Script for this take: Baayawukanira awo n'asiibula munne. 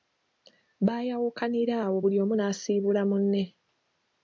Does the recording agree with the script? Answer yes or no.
no